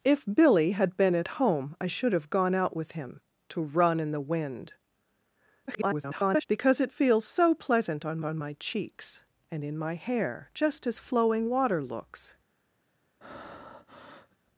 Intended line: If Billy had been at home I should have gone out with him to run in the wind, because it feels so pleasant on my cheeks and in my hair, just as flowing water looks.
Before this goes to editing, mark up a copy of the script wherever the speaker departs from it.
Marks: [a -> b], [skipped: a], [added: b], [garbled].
If Billy had been at home I should have gone out with him to run in the wind, [garbled] because it feels so pleasant on [added: on] my cheeks and in my hair, just as flowing water looks.